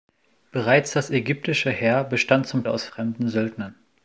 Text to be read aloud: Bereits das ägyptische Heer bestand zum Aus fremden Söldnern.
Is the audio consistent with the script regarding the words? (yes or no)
yes